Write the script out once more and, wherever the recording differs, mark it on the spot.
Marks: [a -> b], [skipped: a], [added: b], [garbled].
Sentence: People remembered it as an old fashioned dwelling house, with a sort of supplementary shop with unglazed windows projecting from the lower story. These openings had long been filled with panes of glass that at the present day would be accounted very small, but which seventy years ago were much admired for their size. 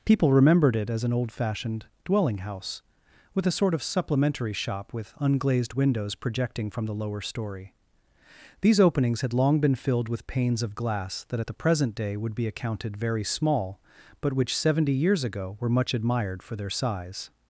People remembered it as an old fashioned dwelling house, with a sort of supplementary shop with unglazed windows projecting from the lower story. These openings had long been filled with panes of glass that at the present day would be accounted very small, but which seventy years ago were much admired for their size.